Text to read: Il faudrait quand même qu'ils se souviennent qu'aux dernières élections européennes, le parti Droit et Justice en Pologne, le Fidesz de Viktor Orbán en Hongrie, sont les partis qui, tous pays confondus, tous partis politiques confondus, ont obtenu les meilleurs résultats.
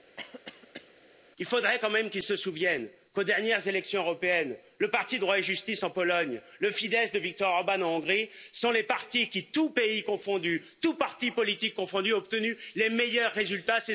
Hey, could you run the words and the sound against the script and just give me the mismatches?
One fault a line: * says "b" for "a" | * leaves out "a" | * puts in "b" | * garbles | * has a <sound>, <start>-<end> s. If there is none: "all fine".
* has a cough, 0.2-1.0 s